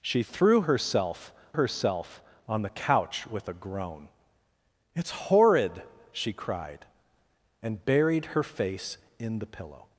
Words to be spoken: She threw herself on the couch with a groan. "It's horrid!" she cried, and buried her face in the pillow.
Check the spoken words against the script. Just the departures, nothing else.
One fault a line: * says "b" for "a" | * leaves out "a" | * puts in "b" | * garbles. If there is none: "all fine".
* puts in "herself"